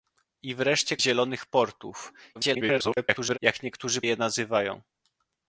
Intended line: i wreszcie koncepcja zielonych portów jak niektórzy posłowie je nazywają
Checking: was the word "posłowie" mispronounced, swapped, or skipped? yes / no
yes